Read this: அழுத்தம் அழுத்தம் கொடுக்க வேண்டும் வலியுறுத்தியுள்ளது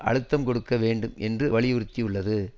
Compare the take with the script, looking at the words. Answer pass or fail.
fail